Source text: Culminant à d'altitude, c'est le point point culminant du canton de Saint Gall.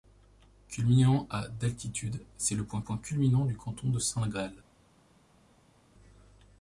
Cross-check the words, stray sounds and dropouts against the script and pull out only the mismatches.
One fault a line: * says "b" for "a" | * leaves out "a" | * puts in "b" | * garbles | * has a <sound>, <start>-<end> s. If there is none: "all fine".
all fine